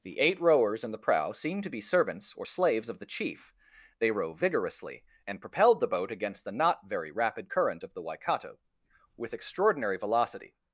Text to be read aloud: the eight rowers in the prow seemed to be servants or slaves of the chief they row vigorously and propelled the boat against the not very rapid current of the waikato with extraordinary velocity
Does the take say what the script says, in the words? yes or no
yes